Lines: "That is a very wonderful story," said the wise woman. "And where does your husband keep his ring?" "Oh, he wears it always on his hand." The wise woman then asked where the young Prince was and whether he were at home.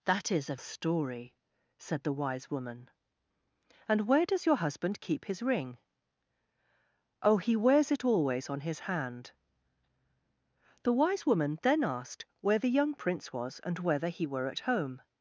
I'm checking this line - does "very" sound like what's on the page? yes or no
no